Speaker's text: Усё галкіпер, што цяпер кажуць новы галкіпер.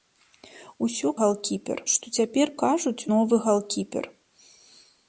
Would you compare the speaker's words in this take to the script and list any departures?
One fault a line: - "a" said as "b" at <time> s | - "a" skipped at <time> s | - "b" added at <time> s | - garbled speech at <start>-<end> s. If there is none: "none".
none